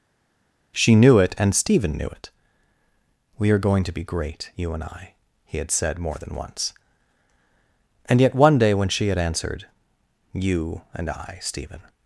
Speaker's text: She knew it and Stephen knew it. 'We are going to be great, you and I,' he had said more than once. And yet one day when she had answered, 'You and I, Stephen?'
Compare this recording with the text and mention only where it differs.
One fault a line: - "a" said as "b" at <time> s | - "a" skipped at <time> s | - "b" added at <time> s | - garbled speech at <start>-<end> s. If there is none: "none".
none